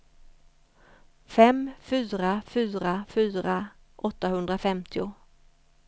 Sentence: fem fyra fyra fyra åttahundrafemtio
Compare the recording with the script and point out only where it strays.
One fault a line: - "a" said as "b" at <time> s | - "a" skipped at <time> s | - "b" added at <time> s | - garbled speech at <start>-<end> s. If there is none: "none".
none